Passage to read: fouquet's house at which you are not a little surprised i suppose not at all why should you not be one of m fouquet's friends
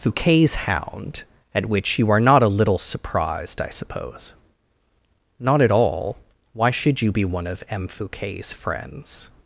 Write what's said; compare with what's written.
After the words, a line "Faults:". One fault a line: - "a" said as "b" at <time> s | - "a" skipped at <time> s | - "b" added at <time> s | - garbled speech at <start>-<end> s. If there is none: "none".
fouquet's hound at which you are not a little surprised i suppose not at all why should you be one of m fouquet's friends
Faults:
- "house" said as "hound" at 0.6 s
- "not" skipped at 7.1 s